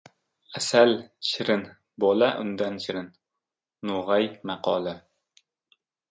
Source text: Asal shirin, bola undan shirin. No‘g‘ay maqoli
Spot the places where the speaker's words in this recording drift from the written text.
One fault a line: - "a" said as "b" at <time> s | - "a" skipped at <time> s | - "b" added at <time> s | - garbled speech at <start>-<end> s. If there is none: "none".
none